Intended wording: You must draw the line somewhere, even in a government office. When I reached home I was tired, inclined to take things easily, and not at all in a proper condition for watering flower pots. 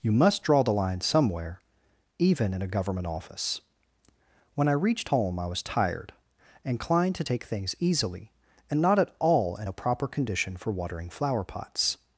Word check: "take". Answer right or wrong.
right